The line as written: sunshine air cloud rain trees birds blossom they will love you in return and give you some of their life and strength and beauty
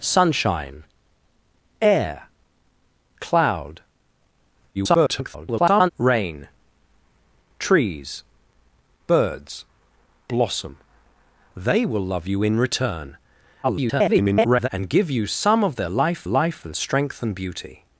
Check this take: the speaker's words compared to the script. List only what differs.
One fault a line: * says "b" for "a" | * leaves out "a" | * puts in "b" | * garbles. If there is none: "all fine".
* garbles
* garbles
* puts in "life"